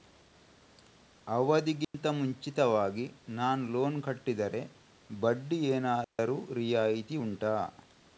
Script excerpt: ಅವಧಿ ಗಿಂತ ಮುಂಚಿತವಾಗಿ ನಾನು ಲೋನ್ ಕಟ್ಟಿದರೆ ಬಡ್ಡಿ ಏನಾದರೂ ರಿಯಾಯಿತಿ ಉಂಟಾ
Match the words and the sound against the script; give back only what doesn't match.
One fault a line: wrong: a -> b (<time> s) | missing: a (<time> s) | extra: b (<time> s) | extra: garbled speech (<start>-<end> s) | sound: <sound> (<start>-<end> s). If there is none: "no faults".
sound: dropout (1.8-1.9 s)
sound: dropout (6.0-6.2 s)